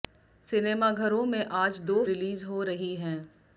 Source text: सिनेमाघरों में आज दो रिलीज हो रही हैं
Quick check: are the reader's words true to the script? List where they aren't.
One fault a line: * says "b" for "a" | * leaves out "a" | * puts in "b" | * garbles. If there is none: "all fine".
all fine